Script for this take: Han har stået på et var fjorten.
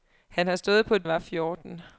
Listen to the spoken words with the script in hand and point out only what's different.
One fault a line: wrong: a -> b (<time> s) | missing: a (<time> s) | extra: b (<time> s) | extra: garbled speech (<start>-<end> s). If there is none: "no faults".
no faults